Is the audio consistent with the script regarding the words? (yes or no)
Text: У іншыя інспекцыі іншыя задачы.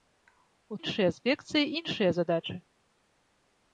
yes